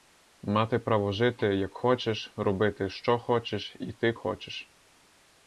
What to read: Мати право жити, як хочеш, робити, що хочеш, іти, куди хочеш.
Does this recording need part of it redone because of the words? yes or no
yes